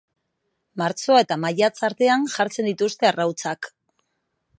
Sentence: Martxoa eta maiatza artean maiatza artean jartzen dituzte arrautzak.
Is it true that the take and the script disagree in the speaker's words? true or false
true